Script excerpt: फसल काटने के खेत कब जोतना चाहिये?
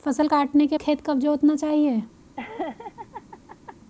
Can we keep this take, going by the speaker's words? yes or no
yes